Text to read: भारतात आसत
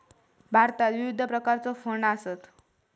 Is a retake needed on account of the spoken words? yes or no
yes